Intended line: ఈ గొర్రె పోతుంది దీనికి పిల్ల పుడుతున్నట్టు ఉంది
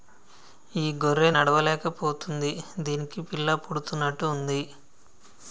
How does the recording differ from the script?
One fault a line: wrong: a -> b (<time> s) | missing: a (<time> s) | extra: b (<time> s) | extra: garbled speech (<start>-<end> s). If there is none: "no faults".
extra: నడవలేక (1.3 s)